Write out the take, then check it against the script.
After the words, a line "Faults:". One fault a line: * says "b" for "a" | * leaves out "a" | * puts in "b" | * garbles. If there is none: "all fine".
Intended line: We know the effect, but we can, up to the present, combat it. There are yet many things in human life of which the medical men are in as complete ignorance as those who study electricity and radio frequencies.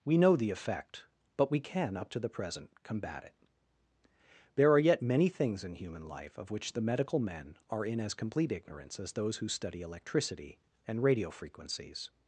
We know the effect, but we can, up to the present, combat it. There are yet many things in human life of which the medical men are in as complete ignorance as those who study electricity and radio frequencies.
Faults:
all fine